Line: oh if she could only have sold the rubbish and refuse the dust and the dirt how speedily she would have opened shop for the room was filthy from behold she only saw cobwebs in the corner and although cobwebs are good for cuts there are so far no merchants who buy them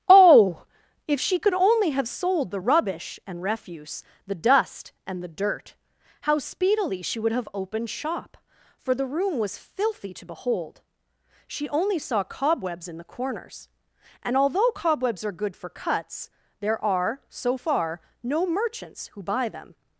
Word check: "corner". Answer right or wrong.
wrong